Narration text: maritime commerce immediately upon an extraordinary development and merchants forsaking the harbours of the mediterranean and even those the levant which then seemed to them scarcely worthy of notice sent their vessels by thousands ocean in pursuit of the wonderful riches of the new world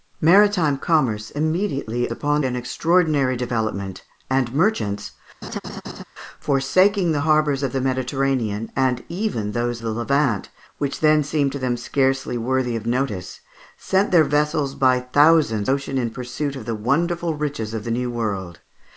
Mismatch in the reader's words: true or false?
false